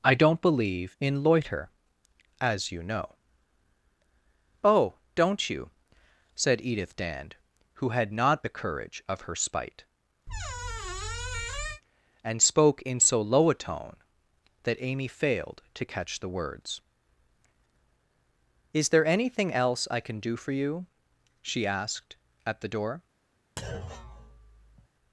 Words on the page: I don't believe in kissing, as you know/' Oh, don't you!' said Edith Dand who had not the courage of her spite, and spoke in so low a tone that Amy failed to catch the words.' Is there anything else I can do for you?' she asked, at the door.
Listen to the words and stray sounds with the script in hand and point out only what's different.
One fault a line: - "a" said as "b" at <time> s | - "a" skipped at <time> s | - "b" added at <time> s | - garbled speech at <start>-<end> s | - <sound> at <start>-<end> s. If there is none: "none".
- "kissing" said as "loiter" at 1.2 s
- squeak at 10.3-11.8 s
- thud at 23.6-24.9 s